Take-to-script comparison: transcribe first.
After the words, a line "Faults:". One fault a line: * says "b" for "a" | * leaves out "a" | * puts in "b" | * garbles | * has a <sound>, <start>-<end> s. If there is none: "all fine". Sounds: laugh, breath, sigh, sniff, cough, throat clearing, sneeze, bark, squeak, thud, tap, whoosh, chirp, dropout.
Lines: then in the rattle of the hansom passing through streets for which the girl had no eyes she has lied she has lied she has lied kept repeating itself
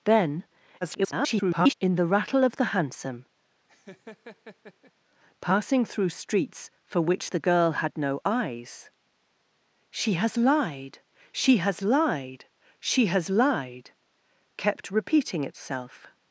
then [garbled] in the rattle of the hansom passing through streets for which the girl had no eyes she has lied she has lied she has lied kept repeating itself
Faults:
* garbles
* has a laugh, 3.7-4.9 s